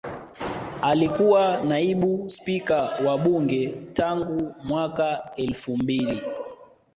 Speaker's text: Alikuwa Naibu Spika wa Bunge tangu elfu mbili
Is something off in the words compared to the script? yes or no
yes